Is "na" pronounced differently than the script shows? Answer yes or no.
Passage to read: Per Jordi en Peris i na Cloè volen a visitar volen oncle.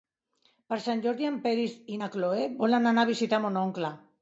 no